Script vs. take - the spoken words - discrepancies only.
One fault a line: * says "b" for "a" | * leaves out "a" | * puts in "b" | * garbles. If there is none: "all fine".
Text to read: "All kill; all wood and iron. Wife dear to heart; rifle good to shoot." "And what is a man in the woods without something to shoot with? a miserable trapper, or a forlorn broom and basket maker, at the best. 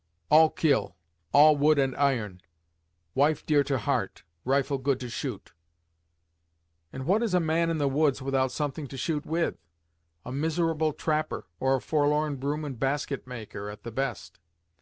all fine